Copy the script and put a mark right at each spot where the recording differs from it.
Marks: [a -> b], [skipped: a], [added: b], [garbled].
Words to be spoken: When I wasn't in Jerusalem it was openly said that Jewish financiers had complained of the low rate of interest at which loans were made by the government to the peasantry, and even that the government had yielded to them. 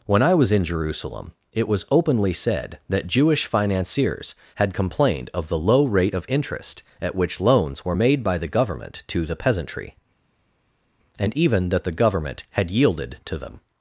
When I [wasn't -> was] in Jerusalem it was openly said that Jewish financiers had complained of the low rate of interest at which loans were made by the government to the peasantry, and even that the government had yielded to them.